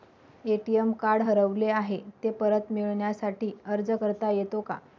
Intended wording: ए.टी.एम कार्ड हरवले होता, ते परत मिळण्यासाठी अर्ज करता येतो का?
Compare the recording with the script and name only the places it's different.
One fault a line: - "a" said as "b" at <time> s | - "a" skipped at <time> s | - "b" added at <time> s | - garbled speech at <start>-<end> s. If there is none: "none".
- "होता" said as "आहे" at 1.7 s